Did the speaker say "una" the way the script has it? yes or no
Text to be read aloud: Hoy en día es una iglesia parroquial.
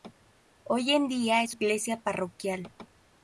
no